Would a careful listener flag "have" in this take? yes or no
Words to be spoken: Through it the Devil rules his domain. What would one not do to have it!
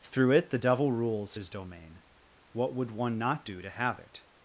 no